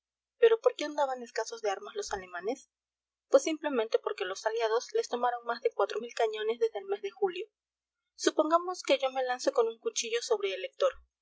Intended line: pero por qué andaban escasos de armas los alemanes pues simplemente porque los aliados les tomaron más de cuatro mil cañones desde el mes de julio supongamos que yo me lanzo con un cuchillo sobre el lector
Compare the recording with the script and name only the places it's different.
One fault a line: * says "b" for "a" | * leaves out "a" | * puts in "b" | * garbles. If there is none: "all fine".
all fine